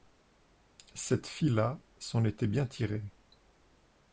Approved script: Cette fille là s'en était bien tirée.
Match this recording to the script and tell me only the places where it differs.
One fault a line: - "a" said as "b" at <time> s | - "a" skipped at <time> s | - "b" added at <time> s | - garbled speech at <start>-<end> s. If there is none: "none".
none